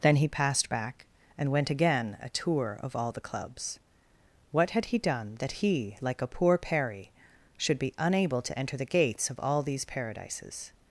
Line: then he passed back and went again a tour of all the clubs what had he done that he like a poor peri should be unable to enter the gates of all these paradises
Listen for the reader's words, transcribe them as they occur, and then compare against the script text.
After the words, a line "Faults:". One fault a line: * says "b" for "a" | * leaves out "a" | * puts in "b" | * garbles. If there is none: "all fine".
then he passed back and went again a tour of all the clubs what had he done that he like a poor peri should be unable to enter the gates of all these paradises
Faults:
all fine